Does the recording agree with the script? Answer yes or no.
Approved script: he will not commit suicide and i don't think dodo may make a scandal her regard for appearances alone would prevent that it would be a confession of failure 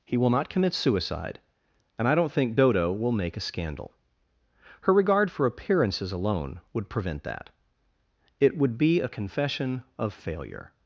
no